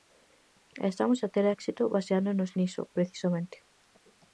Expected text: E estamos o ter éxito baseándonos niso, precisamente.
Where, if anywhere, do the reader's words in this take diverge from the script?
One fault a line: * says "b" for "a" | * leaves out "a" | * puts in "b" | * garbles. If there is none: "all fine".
* says "a" for "o"